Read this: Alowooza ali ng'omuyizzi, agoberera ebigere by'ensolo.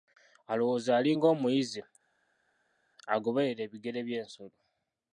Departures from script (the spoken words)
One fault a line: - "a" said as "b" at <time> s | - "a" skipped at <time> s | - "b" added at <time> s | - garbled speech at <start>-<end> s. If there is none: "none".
none